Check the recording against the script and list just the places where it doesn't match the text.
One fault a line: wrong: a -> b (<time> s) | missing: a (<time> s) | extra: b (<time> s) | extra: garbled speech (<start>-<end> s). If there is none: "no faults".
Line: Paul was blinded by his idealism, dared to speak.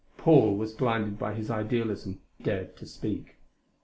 no faults